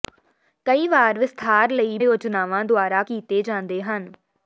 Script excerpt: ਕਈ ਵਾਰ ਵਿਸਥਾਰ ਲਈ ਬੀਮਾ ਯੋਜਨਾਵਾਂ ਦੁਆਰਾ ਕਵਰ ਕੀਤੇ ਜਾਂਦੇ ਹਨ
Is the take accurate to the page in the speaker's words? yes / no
no